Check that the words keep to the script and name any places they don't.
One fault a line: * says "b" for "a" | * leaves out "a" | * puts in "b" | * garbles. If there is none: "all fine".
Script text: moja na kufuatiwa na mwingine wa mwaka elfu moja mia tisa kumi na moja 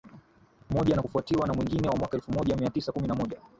all fine